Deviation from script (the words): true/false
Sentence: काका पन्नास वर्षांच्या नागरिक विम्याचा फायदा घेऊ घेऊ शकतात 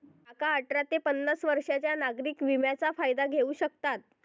true